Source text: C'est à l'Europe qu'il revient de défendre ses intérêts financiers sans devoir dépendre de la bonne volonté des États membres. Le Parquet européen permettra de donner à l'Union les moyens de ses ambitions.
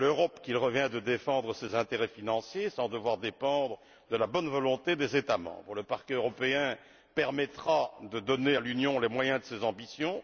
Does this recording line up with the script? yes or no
yes